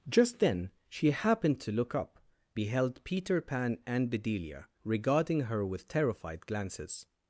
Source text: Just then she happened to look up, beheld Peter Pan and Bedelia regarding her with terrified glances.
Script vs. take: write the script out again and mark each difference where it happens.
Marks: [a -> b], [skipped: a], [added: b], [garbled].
Just then she happened to look up, beheld Peter Pan and Bedelia regarding her with terrified glances.